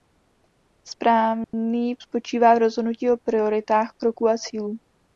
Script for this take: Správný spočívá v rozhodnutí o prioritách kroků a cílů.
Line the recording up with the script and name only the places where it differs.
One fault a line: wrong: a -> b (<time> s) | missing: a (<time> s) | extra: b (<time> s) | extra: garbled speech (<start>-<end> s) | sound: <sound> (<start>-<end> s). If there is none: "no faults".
sound: dropout (1.4-1.5 s)